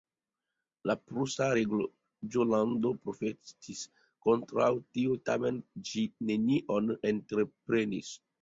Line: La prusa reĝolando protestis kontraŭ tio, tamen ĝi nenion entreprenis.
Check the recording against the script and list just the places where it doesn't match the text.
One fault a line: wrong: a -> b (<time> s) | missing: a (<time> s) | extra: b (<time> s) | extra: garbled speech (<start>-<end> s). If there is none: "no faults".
no faults